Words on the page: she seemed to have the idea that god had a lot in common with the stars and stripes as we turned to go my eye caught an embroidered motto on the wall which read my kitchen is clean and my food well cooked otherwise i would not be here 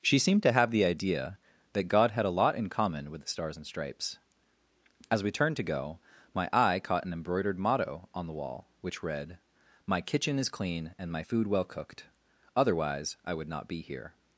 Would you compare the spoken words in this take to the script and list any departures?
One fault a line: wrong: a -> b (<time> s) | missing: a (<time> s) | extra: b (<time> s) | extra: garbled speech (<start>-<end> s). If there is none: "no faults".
no faults